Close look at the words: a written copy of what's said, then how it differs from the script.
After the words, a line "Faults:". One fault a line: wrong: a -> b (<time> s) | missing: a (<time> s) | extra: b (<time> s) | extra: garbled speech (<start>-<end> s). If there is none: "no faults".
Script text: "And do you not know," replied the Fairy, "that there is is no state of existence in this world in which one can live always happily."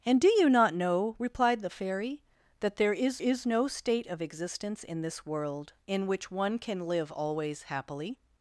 "And do you not know," replied the Fairy, "that there is is no state of existence in this world in which one can live always happily."
Faults:
no faults